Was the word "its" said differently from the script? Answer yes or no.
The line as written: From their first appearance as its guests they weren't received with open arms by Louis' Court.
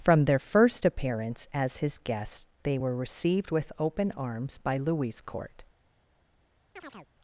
yes